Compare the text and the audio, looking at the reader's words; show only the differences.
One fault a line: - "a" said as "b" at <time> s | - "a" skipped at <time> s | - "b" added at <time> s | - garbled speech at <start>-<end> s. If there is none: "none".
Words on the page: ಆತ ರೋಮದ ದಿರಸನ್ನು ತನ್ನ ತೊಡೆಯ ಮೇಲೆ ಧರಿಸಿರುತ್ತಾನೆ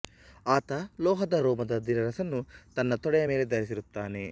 - "ಲೋಹದ" added at 1.0 s